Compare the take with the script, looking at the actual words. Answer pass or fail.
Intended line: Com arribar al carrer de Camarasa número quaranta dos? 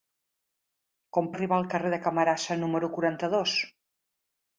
pass